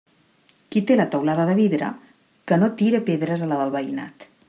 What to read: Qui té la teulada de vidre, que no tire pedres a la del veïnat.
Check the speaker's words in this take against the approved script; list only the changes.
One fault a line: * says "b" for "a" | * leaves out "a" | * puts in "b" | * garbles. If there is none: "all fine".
all fine